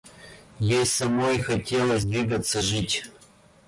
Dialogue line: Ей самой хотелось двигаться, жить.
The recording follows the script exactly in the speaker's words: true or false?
true